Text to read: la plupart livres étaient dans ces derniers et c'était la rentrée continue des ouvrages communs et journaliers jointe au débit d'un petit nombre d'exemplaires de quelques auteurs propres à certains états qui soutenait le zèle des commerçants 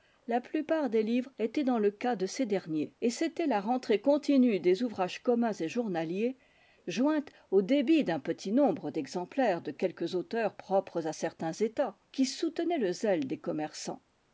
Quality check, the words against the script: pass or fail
fail